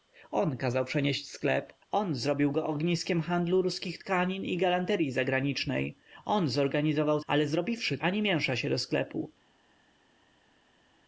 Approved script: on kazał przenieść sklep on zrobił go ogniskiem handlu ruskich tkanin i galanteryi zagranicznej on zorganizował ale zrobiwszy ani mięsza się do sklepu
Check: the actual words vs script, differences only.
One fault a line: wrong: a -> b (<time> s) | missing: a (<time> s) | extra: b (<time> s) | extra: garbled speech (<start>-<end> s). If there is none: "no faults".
no faults